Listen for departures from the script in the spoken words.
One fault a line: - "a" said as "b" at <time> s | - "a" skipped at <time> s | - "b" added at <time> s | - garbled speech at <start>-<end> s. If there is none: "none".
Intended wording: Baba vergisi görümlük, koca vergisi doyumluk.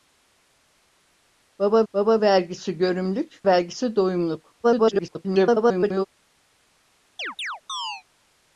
- "baba" added at 1.9 s
- "koca" skipped at 3.4 s
- garbled speech at 4.6-6.1 s